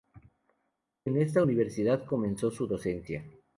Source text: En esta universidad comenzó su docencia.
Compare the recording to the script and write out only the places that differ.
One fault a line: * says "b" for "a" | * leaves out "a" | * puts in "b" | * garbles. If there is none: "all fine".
all fine